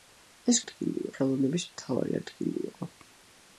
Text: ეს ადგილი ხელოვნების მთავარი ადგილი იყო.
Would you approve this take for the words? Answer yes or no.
yes